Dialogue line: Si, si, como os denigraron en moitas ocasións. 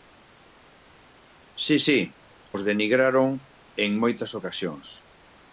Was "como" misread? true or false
true